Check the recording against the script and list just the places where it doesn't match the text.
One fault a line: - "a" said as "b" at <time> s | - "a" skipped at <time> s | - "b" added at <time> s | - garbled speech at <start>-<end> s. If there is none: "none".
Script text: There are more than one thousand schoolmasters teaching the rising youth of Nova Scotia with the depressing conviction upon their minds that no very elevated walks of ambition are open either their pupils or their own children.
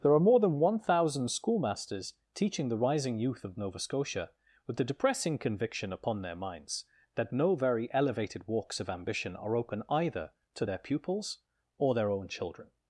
- "to" added at 10.5 s